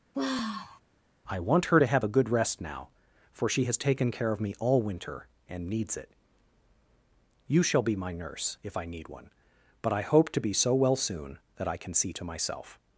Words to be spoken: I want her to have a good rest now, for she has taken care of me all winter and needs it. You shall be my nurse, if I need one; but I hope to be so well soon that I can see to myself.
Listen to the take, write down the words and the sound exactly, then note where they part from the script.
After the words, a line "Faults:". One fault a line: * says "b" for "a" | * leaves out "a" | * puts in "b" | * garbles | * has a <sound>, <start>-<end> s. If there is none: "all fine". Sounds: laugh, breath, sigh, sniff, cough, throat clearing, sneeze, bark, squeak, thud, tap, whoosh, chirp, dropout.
I want her to have a good rest now, for she has taken care of me all winter and needs it. You shall be my nurse, if I need one; but I hope to be so well soon that I can see to myself.
Faults:
* has a sigh, 0.1-0.8 s